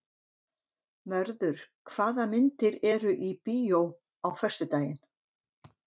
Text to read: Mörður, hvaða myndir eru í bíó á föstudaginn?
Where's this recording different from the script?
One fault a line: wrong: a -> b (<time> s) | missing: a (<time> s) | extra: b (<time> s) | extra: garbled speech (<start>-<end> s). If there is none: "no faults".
no faults